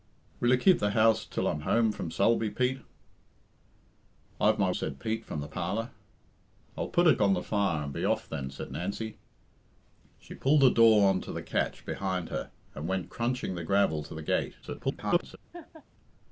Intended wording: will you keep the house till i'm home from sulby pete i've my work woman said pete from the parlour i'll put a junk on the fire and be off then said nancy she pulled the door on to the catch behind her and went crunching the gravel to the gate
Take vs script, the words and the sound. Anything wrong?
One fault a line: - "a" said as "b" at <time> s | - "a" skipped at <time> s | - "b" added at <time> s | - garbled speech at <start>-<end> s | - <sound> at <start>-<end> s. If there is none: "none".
- "work woman" skipped at 4.7 s
- "junk" skipped at 7.2 s
- garbled speech at 14.6-15.4 s
- laugh at 15.5-15.8 s